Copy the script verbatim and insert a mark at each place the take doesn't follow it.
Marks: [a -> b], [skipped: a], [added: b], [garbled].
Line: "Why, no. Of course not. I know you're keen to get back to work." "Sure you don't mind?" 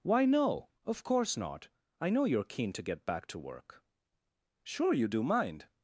"Why, no. Of course not. I know you're keen to get back to work." "Sure you [don't -> do] mind?"